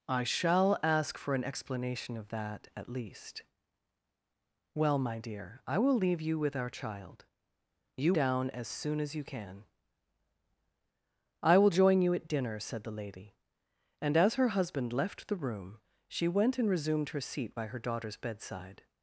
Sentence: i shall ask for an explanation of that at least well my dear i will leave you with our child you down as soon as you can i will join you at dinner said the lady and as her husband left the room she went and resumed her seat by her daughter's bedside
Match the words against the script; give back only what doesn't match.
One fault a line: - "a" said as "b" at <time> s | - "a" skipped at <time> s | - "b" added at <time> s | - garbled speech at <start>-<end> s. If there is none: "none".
none